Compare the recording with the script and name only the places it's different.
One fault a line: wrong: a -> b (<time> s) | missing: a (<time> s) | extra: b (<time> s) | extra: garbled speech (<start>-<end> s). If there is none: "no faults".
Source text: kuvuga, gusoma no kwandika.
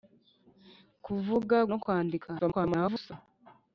missing: gusoma (1.6 s)
extra: garbled speech (2.4-3.1 s)